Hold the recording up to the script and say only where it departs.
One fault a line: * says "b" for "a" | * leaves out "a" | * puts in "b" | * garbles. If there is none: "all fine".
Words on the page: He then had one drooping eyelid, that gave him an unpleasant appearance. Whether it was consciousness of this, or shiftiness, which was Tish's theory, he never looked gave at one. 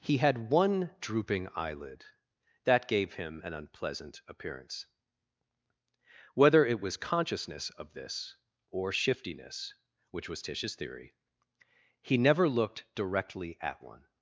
* leaves out "then"
* says "directly" for "gave"